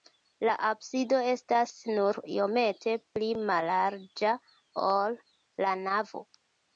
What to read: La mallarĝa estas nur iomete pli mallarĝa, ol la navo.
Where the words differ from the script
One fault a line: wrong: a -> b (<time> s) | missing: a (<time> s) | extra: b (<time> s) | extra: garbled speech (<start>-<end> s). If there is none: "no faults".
wrong: mallarĝa -> absido (0.7 s)